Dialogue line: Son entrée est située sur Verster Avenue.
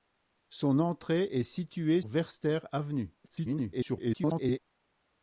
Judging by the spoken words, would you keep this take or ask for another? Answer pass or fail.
fail